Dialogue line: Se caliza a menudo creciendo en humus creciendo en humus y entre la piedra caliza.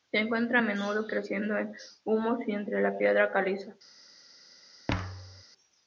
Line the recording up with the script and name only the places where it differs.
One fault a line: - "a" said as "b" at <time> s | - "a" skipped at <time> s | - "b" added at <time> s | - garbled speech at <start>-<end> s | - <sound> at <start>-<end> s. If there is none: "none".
- "caliza" said as "encuentra" at 0.2 s
- "creciendo en humus" skipped at 2.4 s
- thud at 4.9-5.4 s